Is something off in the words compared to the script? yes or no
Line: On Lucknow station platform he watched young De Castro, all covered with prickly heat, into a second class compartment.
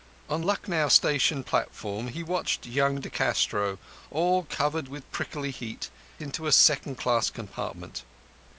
no